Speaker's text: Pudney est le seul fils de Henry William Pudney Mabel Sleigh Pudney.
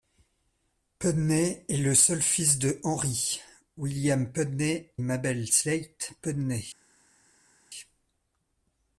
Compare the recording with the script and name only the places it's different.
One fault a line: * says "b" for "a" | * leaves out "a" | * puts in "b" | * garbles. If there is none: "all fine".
all fine